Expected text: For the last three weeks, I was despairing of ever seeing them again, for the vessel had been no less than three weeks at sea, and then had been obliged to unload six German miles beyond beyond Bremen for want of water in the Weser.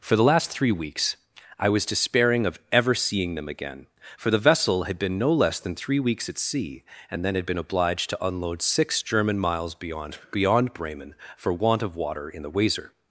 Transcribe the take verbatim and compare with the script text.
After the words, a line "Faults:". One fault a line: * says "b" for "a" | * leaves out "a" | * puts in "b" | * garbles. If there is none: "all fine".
For the last three weeks, I was despairing of ever seeing them again, for the vessel had been no less than three weeks at sea, and then had been obliged to unload six German miles beyond beyond Bremen for want of water in the Weser.
Faults:
all fine